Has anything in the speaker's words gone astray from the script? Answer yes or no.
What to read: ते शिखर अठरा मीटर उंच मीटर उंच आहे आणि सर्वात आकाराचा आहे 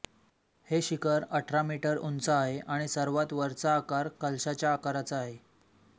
yes